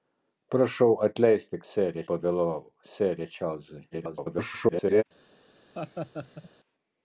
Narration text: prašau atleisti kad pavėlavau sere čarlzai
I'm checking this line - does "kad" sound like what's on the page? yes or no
no